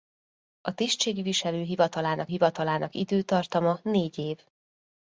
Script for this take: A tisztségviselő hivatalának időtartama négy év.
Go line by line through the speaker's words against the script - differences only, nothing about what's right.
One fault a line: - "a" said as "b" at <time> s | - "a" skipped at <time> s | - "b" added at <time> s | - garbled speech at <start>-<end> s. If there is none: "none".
- "hivatalának" added at 2.3 s